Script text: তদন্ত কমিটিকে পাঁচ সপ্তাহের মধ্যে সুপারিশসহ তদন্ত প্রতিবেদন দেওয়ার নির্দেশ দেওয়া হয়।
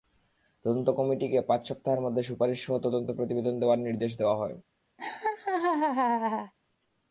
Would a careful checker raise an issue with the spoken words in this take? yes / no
no